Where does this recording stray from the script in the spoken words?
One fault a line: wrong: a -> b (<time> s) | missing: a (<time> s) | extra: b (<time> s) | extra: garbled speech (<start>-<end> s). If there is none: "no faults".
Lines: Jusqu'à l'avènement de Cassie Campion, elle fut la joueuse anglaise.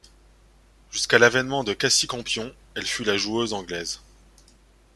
no faults